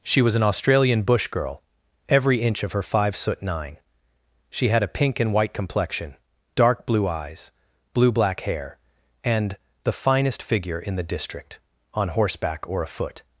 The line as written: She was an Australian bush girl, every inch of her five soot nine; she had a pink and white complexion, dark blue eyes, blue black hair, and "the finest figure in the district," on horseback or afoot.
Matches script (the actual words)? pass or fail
pass